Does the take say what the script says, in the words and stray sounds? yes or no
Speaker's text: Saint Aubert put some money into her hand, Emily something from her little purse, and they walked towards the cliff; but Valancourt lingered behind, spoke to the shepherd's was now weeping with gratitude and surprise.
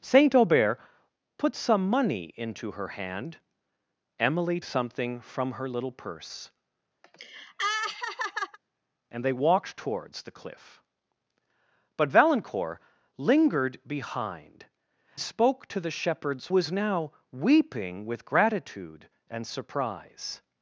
no